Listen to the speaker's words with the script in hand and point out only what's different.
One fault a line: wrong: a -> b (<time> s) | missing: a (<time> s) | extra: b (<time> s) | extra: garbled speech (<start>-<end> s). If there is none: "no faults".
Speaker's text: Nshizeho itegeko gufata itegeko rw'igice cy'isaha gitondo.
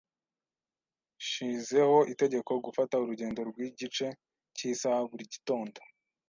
wrong: itegeko -> urugendo (3.0 s)
extra: buri (5.1 s)